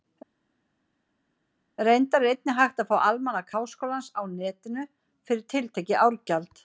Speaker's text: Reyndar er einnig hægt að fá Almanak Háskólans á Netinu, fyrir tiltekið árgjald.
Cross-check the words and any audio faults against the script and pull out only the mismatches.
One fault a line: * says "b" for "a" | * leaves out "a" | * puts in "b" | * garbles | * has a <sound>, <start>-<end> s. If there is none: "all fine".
all fine